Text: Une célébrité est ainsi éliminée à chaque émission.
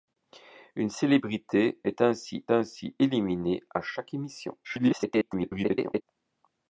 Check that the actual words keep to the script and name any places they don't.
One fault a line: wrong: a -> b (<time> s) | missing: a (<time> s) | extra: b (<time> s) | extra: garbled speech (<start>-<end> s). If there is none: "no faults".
extra: ainsi (2.5 s)
extra: garbled speech (4.6-6.0 s)